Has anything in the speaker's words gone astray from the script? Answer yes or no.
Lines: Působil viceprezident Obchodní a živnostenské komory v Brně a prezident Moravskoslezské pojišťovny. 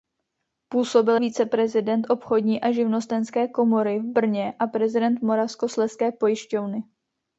no